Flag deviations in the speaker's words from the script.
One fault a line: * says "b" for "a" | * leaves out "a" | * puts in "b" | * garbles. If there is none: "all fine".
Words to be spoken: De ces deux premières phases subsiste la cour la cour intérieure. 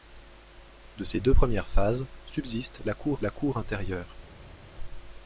all fine